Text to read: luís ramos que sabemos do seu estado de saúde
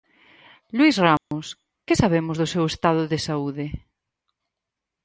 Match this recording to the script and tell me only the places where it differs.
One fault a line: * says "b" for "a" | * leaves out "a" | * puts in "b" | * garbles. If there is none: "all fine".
all fine